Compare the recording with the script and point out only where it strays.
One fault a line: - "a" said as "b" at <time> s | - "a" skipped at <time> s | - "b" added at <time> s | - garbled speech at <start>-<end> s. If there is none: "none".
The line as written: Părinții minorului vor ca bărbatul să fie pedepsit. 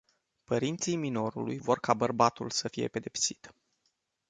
none